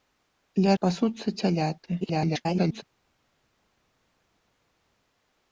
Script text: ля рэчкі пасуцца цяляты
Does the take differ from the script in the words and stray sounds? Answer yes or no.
yes